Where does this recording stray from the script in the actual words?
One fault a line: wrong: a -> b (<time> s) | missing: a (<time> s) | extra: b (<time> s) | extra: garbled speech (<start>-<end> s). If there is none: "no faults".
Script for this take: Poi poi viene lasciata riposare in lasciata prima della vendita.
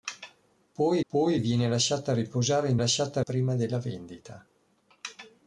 no faults